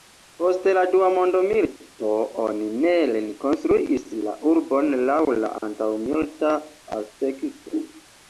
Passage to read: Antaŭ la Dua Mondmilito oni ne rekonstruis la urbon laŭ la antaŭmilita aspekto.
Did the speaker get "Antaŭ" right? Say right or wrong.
wrong